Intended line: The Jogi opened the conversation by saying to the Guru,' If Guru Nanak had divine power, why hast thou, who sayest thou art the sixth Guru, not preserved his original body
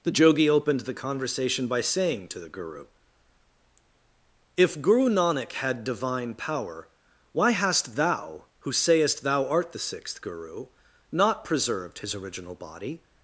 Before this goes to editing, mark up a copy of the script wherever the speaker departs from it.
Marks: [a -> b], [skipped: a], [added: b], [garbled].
The Jogi opened the conversation by saying to the Guru,' If Guru Nanak had divine power, why hast thou, who sayest thou art the sixth Guru, not preserved his original body